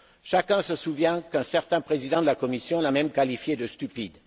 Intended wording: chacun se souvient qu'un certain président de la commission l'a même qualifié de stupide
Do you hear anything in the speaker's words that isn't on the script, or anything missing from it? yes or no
no